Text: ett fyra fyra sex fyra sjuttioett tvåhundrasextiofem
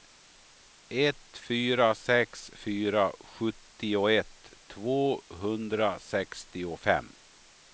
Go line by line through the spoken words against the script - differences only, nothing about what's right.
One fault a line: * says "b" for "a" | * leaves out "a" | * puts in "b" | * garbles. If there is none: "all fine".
* leaves out "fyra"